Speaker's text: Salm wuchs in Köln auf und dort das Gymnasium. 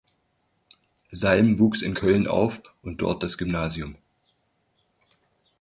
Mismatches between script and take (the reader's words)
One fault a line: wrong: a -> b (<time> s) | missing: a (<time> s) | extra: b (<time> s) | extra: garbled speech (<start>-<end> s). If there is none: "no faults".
no faults